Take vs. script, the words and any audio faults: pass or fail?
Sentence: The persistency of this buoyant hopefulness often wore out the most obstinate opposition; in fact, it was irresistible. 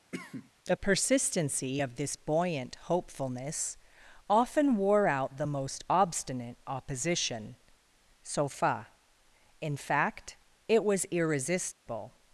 fail